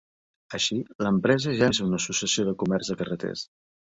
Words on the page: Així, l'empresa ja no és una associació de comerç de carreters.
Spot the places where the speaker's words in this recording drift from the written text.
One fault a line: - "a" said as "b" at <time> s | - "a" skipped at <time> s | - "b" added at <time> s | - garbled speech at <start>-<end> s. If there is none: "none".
- "no" skipped at 1.7 s